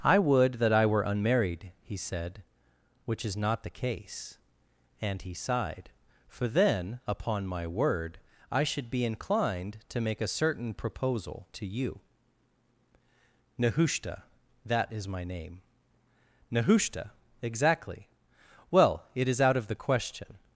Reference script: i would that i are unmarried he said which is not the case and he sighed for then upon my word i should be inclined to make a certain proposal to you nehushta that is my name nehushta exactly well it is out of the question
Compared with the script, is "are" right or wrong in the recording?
wrong